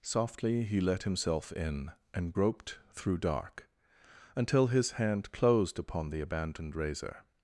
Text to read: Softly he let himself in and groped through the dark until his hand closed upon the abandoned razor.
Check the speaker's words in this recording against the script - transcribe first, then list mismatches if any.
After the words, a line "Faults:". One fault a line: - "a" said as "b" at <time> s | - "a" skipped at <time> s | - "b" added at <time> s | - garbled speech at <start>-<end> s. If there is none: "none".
Softly he let himself in and groped through dark until his hand closed upon the abandoned razor.
Faults:
- "the" skipped at 3.2 s